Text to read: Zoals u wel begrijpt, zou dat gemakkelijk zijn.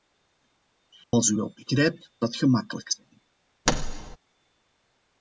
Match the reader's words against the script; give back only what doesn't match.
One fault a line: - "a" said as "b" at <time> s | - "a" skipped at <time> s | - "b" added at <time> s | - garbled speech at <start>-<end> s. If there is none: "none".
- "zou" skipped at 2.1 s